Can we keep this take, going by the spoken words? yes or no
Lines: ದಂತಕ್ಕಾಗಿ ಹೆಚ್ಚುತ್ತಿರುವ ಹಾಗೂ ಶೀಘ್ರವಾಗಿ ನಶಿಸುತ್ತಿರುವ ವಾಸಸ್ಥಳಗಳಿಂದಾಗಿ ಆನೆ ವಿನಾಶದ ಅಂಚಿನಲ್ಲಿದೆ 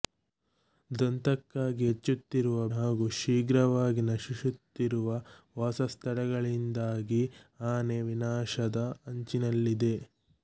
yes